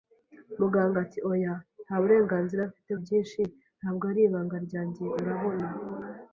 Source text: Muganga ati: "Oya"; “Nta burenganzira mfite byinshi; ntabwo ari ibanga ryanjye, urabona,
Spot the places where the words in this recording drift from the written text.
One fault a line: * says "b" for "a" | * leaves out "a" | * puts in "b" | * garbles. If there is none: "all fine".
all fine